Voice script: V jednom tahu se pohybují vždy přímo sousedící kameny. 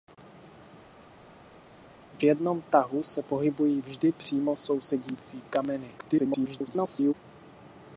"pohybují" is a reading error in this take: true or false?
false